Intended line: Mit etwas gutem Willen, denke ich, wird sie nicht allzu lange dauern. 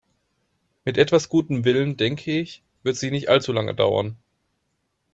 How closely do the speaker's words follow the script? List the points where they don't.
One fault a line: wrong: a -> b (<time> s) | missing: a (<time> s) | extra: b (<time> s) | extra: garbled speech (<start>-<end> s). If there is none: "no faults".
no faults